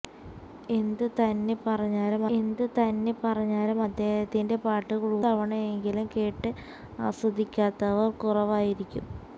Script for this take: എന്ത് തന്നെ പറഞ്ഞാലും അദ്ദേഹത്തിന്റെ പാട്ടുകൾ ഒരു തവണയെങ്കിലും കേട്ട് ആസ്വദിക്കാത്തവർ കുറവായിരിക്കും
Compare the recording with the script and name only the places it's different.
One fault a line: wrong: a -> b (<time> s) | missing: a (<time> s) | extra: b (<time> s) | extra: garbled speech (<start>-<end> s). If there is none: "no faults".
extra: എന്ത് തന്നെ പറഞ്ഞാലും (2.3 s)
missing: ഒരു (5.0 s)